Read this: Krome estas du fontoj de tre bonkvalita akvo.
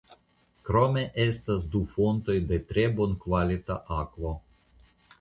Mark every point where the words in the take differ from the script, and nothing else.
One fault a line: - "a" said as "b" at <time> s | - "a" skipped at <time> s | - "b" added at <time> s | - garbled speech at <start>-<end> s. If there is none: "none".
none